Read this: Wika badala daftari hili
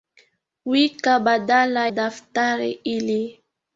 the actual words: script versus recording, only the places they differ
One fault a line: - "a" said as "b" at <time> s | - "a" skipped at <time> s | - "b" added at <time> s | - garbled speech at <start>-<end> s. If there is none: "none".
none